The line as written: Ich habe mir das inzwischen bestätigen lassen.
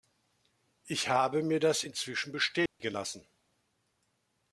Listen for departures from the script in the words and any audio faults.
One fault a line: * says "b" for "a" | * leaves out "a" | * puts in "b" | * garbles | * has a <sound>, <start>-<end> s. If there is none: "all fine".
* has a dropout, 2.7-2.8 s